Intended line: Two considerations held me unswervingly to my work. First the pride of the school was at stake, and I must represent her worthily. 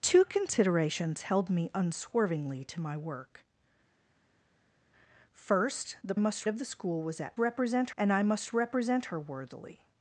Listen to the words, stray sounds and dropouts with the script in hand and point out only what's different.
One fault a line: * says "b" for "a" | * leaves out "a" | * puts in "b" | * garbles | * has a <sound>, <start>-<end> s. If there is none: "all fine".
* says "must" for "pride"
* says "represent" for "stake"